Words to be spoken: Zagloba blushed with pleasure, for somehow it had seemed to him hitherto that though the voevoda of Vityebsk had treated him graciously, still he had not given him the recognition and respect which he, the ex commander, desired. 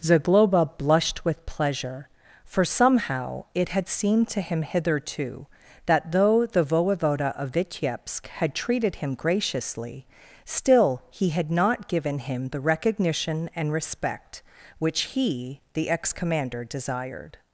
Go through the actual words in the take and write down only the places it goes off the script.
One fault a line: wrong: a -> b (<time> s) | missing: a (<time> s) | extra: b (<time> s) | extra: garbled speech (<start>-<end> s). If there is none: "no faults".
no faults